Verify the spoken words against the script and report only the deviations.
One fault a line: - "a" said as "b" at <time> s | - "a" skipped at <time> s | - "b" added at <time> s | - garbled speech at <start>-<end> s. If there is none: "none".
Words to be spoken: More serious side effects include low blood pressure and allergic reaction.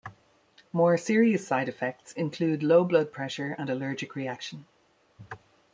none